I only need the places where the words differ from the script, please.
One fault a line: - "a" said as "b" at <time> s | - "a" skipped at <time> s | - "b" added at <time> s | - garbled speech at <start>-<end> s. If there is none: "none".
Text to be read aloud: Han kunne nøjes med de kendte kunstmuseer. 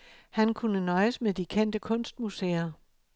none